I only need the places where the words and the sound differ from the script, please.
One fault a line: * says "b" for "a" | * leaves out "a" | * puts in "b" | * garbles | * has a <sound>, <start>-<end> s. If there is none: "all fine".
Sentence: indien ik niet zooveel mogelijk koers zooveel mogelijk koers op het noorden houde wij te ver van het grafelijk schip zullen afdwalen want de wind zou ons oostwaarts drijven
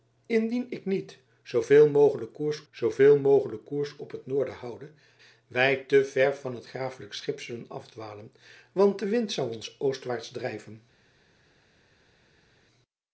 all fine